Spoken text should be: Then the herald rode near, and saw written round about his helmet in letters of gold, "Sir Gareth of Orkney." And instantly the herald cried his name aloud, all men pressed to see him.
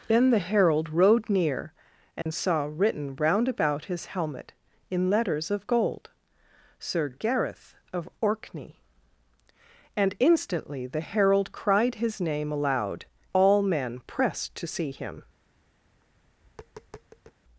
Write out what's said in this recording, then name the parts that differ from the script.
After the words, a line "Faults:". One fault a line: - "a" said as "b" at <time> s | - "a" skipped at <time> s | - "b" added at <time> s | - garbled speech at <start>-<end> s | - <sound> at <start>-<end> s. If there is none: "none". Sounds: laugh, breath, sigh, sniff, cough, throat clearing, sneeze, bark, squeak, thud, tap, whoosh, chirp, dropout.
Then the herald rode near, and saw written round about his helmet in letters of gold, "Sir Gareth of Orkney." And instantly the herald cried his name aloud, all men pressed to see him.
Faults:
- dropout at 2.2-2.3 s
- tap at 15.9-17.4 s